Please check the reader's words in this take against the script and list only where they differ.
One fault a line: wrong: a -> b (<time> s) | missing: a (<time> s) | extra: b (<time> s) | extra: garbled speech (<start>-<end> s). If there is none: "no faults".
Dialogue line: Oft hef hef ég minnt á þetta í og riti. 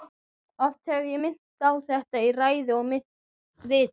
missing: hef (1.1 s)
extra: ræðu (2.4 s)